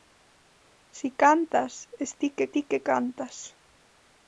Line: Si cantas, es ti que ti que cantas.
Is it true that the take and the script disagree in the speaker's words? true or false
false